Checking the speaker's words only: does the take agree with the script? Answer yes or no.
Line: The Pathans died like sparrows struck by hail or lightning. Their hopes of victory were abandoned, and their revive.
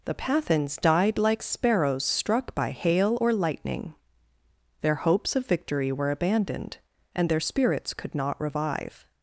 no